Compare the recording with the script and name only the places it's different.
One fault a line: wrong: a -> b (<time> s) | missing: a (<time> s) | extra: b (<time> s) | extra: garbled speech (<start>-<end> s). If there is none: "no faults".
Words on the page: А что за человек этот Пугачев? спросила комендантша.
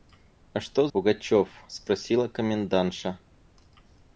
missing: за человек этот (0.9 s)